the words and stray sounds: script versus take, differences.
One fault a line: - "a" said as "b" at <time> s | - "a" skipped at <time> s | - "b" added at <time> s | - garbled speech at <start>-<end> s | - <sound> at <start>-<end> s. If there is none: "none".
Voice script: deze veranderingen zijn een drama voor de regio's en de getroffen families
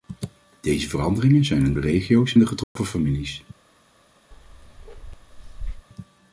- "drama voor" skipped at 1.7 s
- "en" skipped at 2.3 s
- dropout at 2.6-2.8 s
- bark at 4.3-5.9 s